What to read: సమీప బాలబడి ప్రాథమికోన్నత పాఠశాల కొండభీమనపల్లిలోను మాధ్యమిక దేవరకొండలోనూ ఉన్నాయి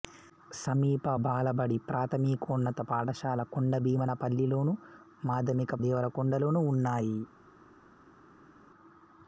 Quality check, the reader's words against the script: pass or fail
pass